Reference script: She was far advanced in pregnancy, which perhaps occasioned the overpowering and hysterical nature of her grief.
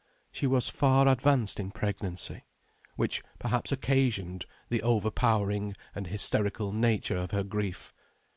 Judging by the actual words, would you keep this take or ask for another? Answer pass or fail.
pass